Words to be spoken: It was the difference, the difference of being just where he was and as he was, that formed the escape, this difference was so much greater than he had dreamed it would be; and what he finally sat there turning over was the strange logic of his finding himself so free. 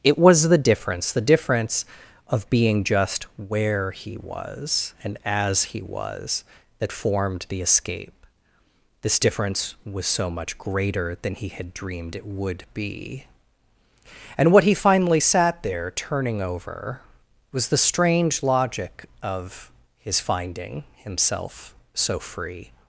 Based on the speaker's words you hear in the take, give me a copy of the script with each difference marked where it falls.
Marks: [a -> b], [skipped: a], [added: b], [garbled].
It was the difference, the difference of being just where he was and as he was, that formed the escape, this difference was so much greater than he had dreamed it would be; and what he finally sat there turning over was the strange logic of his finding himself so free.